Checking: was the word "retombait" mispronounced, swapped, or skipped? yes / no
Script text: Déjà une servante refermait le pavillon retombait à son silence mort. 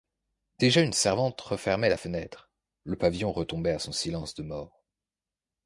no